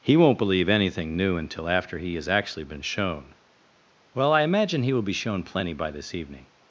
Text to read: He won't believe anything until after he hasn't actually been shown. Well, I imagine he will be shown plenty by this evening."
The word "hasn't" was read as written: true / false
false